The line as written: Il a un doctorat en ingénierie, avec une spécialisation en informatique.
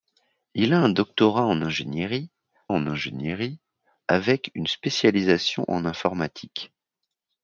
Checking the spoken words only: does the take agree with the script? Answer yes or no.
no